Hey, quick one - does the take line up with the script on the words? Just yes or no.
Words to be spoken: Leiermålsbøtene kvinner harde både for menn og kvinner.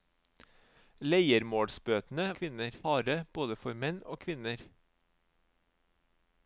yes